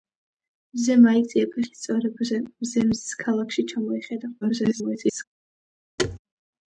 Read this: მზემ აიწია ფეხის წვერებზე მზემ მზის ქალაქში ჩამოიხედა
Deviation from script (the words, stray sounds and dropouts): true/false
true